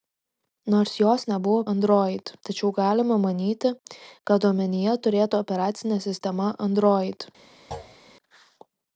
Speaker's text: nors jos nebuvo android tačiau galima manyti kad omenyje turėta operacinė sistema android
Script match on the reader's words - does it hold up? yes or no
yes